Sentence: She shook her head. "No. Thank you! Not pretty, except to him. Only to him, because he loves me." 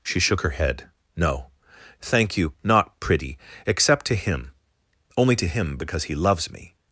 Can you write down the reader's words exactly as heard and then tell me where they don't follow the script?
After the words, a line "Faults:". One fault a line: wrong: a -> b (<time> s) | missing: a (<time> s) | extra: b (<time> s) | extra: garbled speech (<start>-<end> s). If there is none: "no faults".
She shook her head. "No. Thank you! Not pretty, except to him. Only to him, because he loves me."
Faults:
no faults